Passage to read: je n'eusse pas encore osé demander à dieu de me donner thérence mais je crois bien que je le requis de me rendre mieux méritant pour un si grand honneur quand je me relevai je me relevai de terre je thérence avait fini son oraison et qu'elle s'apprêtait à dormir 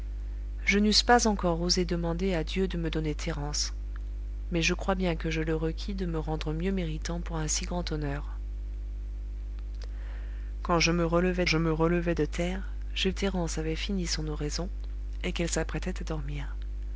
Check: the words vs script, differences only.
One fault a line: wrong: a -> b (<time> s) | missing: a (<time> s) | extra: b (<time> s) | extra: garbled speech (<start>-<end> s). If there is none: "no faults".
no faults